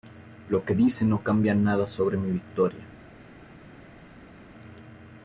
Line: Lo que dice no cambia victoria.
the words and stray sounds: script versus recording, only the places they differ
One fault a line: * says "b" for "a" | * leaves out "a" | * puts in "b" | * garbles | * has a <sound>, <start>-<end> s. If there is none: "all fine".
* puts in "nada sobre mi"